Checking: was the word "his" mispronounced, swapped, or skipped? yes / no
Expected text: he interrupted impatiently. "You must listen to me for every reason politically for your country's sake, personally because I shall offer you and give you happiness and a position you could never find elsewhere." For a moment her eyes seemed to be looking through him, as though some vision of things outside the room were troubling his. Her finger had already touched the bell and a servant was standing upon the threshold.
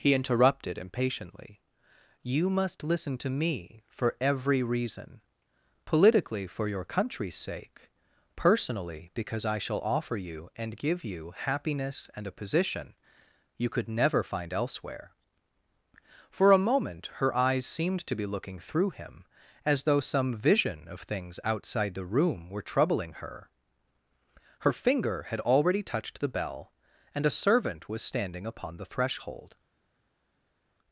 yes